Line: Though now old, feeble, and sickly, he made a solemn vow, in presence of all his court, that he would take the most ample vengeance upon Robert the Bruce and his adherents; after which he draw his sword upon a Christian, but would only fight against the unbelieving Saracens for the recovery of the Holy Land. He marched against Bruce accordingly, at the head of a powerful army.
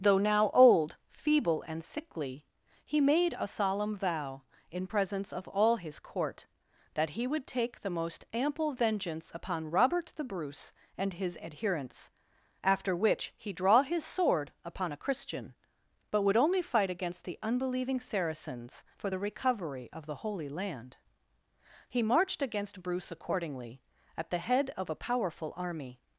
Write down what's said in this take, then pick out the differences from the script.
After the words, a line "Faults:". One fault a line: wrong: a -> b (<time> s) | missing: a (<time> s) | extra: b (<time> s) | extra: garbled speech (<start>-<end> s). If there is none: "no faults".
Though now old, feeble, and sickly, he made a solemn vow, in presence of all his court, that he would take the most ample vengeance upon Robert the Bruce and his adherents; after which he draw his sword upon a Christian, but would only fight against the unbelieving Saracens for the recovery of the Holy Land. He marched against Bruce accordingly, at the head of a powerful army.
Faults:
no faults